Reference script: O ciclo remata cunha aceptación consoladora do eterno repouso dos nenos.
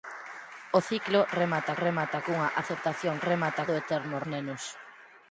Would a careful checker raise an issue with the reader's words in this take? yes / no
yes